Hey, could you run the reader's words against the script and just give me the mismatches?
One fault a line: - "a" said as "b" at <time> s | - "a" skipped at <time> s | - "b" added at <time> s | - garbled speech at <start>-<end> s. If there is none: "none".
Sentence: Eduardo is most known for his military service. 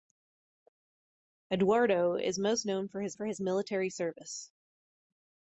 - "for his" added at 3.1 s